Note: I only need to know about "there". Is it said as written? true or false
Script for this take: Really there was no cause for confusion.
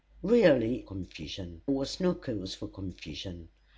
false